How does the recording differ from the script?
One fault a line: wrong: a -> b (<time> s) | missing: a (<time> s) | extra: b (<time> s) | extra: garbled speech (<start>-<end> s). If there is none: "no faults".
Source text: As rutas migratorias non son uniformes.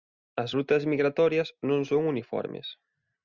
no faults